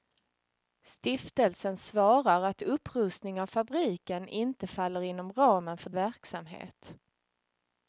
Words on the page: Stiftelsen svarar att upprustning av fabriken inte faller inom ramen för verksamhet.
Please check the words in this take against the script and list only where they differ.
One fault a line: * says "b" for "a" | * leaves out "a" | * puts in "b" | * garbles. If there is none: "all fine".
all fine